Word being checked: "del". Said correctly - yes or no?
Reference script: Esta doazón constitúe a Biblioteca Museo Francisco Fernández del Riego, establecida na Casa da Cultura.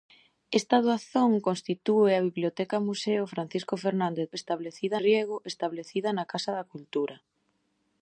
no